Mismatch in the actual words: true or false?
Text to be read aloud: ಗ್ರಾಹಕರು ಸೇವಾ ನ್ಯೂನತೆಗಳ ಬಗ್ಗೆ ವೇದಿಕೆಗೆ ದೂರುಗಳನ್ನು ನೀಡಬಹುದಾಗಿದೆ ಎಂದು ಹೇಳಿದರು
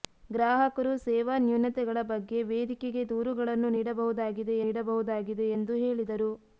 true